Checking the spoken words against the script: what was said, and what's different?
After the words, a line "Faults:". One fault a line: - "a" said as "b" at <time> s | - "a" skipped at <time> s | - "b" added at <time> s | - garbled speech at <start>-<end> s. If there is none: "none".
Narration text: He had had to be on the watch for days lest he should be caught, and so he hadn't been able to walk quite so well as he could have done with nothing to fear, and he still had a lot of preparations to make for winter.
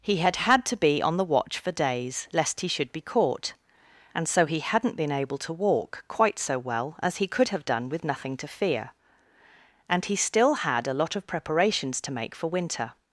He had had to be on the watch for days lest he should be caught, and so he hadn't been able to walk quite so well as he could have done with nothing to fear, and he still had a lot of preparations to make for winter.
Faults:
none